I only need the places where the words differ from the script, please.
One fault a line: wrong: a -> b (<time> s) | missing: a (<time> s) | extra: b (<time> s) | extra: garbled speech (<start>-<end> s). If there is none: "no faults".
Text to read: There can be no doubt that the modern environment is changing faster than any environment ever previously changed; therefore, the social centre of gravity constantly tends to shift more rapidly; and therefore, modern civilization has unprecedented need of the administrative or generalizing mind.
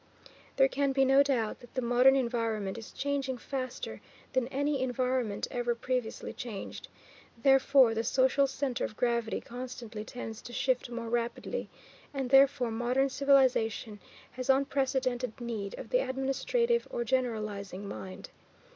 no faults